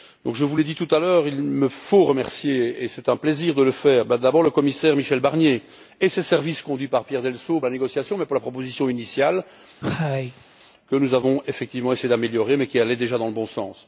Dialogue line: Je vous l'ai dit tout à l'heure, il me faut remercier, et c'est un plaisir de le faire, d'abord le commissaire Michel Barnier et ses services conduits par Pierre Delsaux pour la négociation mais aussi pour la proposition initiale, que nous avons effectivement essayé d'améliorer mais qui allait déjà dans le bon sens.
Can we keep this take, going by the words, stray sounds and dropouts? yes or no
no